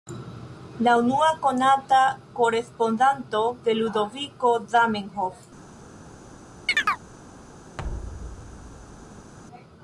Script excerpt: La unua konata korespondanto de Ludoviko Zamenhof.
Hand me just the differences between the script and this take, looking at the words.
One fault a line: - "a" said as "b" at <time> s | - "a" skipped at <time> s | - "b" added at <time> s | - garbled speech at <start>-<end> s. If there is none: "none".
none